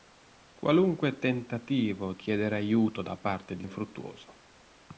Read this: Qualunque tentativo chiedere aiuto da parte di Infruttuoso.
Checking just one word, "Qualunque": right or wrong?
right